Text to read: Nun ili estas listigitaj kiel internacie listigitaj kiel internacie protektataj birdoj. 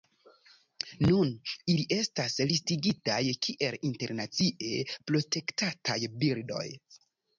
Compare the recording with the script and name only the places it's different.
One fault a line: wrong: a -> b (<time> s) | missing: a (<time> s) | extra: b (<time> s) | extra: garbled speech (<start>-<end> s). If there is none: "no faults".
missing: listigitaj kiel internacie (4.8 s)